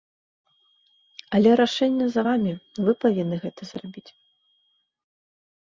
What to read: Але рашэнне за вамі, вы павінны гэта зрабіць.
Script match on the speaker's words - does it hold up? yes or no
yes